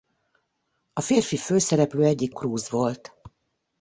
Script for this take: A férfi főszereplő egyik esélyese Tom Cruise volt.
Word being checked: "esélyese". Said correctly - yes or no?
no